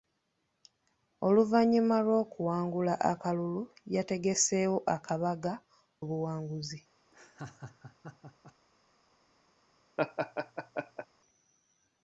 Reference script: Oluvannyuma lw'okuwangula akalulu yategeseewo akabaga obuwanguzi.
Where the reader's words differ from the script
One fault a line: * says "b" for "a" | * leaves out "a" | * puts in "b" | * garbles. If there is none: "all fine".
all fine